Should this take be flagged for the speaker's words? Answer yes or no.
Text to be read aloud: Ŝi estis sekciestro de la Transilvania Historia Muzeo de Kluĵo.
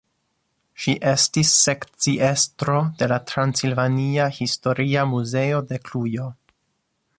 no